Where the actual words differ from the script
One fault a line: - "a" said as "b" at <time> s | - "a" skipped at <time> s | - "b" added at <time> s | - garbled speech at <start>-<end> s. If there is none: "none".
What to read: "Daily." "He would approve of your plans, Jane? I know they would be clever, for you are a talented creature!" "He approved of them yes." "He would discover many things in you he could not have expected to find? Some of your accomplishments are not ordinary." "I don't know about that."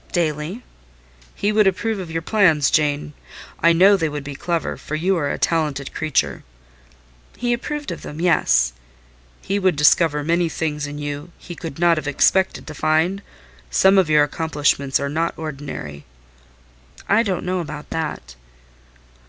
none